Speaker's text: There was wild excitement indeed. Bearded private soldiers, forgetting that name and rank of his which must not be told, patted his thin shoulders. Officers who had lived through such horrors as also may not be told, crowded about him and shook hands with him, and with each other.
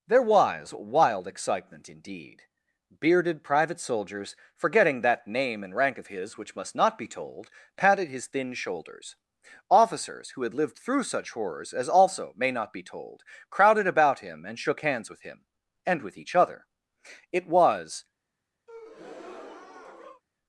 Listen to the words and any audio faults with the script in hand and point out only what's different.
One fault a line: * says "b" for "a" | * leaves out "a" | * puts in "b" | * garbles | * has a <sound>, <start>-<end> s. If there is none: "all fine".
* puts in "It was"
* has a breath, 18.7-20.2 s